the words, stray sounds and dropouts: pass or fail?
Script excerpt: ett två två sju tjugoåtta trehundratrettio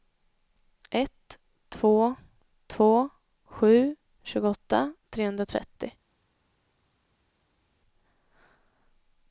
pass